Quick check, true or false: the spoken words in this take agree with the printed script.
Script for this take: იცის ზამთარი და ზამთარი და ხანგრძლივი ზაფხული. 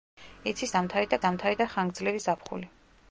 true